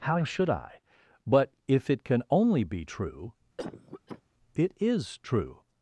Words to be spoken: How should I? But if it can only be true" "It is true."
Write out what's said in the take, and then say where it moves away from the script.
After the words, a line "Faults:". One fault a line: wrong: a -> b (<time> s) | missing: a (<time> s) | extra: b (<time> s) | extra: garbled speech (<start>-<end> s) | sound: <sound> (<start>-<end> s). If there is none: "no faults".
How should I? But if it can only be true" "It is true."
Faults:
sound: cough (3.6-4.2 s)